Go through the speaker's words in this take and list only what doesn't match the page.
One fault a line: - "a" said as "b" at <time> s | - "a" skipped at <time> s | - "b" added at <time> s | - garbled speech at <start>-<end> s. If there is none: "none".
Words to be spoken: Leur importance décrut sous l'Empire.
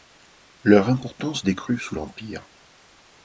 none